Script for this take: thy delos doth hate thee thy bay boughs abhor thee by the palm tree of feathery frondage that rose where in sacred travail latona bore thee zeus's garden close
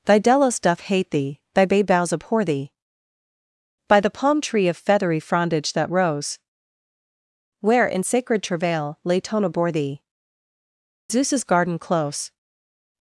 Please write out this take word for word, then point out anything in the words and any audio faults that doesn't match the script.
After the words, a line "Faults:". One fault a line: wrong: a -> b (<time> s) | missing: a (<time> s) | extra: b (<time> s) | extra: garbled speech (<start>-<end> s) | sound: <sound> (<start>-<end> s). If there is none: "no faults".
thy delos doth hate thee thy bay boughs abhor thee by the palm tree of feathery frondage that rose where in sacred travail latona bore thee zeus's garden close
Faults:
no faults